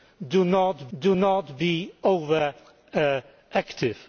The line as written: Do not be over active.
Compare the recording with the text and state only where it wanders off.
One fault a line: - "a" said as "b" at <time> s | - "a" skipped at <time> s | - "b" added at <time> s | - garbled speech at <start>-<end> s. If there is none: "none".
- "do not" added at 1.0 s